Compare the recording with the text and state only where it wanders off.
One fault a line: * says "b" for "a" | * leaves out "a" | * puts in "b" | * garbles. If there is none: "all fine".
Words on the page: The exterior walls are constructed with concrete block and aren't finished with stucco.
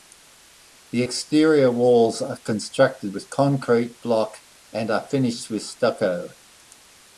* says "are" for "aren't"